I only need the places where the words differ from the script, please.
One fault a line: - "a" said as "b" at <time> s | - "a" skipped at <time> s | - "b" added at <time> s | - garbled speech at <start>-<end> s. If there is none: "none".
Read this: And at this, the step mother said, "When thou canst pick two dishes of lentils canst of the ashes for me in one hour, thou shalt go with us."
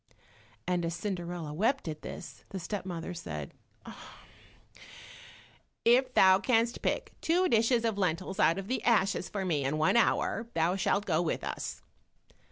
- "as Cinderella wept" added at 0.8 s
- "When" said as "If" at 5.8 s
- "canst" said as "out" at 8.4 s